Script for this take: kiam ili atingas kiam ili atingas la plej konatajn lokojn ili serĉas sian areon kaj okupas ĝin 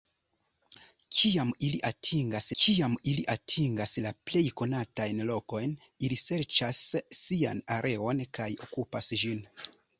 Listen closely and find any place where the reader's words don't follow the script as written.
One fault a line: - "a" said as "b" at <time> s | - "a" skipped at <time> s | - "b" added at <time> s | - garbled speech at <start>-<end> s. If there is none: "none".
none